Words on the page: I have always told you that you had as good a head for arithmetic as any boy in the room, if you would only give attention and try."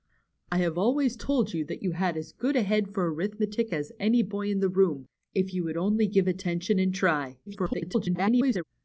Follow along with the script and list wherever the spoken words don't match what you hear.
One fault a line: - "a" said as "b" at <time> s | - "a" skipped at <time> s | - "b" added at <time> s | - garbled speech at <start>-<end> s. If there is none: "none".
- garbled speech at 7.5-8.6 s